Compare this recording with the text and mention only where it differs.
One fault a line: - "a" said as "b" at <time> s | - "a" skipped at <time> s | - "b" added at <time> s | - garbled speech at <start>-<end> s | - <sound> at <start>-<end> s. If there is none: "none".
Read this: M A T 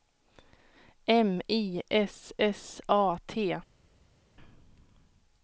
- "I S S" added at 1.5 s